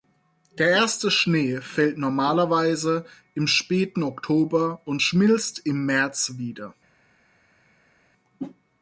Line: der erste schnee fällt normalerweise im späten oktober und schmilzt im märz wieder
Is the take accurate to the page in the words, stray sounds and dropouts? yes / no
yes